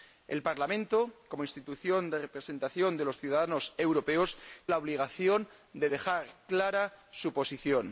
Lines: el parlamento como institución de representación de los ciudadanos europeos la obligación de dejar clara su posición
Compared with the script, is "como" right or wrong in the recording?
right